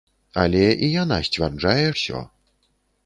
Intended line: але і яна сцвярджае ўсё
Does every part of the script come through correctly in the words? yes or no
yes